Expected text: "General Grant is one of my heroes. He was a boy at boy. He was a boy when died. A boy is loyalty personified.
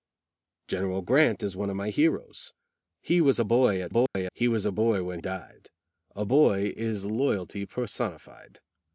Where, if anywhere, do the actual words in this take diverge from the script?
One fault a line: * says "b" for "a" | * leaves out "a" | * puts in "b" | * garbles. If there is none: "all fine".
all fine